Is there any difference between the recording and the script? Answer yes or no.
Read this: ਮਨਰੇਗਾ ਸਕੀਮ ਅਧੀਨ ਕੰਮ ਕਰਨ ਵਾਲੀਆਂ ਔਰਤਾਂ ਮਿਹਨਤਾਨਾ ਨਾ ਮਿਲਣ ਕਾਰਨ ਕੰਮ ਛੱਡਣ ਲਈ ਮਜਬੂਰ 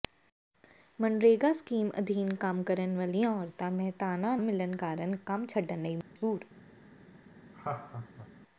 yes